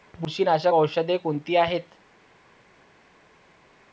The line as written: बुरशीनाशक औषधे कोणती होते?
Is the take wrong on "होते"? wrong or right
wrong